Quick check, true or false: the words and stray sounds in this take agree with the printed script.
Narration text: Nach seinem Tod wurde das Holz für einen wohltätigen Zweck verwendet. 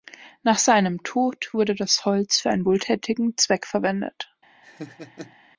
false